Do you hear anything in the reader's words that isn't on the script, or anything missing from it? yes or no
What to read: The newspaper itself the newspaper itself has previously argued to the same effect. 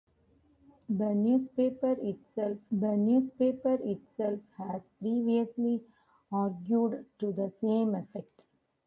no